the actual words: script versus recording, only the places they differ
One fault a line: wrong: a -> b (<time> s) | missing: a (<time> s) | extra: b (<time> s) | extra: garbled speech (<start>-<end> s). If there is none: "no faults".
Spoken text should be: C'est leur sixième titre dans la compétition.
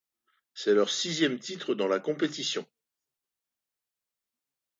no faults